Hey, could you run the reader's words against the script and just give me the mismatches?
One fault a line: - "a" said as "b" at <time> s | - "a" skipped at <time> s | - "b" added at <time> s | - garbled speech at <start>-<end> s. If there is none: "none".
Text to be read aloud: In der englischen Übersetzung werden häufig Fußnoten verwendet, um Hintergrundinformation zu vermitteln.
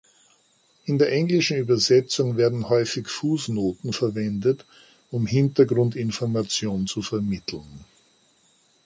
none